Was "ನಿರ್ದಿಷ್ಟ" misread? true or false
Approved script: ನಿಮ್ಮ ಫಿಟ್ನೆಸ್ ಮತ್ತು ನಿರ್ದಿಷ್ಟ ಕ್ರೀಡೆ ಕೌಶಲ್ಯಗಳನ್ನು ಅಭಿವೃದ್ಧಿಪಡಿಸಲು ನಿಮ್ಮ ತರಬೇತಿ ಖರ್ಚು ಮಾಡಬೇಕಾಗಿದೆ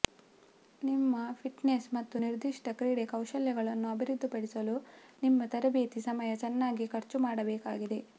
false